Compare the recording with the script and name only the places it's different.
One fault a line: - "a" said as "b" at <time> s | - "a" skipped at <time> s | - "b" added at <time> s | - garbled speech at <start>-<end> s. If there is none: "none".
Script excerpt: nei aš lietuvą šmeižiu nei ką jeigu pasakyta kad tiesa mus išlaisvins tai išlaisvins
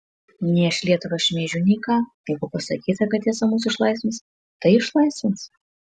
none